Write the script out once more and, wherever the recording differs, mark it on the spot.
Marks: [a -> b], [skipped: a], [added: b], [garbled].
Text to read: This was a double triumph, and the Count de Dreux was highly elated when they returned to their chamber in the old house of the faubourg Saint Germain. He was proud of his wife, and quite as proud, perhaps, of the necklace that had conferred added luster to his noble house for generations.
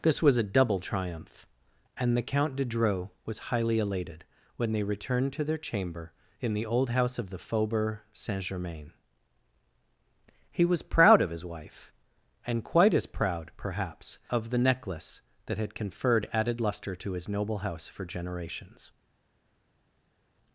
This was a double triumph, and the Count de Dreux was highly elated when they returned to their chamber in the old house of the faubourg Saint Germain. He was proud of his wife, and quite as proud, perhaps, of the necklace that had conferred added luster to his noble house for generations.